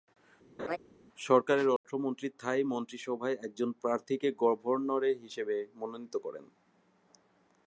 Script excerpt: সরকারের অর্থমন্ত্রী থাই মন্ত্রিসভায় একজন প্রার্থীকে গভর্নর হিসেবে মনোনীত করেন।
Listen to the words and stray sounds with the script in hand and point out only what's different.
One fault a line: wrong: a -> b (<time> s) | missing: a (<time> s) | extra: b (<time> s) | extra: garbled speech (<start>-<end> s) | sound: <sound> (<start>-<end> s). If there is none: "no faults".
sound: laugh (0.6-0.8 s)
sound: dropout (1.8-1.8 s)